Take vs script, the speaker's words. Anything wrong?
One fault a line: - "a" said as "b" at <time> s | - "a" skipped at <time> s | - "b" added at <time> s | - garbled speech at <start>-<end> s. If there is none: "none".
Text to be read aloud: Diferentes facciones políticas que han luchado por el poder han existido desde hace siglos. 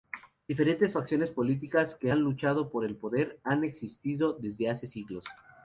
none